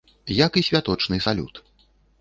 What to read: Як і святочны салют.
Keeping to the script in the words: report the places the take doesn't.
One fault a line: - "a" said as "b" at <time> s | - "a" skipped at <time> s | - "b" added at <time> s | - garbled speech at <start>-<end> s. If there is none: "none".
none